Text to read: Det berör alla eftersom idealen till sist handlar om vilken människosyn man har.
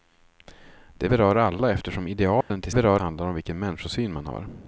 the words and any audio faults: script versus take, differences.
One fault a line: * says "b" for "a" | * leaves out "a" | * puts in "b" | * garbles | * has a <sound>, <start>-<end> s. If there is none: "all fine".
* has a dropout, 2.4-2.5 s
* says "berör" for "sist"